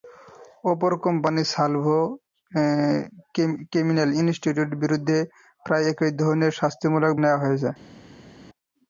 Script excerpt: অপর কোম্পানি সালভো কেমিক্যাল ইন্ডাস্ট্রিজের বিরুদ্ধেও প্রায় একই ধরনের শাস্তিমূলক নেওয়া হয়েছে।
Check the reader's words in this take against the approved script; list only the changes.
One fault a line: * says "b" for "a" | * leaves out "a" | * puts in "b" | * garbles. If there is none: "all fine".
all fine